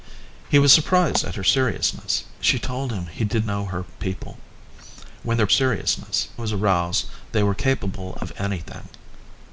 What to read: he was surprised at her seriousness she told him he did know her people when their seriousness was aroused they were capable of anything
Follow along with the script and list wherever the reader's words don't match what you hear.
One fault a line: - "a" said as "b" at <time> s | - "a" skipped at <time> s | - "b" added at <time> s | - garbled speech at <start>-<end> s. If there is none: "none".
none